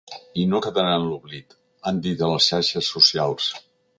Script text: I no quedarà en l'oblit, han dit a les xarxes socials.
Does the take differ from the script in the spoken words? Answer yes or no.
no